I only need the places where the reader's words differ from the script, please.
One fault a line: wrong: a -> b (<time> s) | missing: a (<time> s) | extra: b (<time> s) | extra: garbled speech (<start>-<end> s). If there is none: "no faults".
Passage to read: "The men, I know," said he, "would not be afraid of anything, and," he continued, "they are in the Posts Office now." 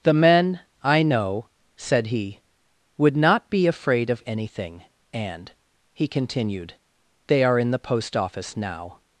wrong: Posts -> Post (7.8 s)